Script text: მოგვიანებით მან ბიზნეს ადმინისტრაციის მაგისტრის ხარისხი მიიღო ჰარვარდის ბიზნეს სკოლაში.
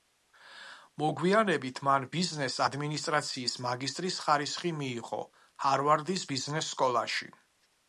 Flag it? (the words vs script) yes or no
no